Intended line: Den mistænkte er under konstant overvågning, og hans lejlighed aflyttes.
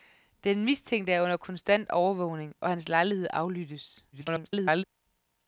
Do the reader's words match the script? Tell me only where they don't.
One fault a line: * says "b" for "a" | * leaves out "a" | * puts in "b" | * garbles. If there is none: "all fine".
* garbles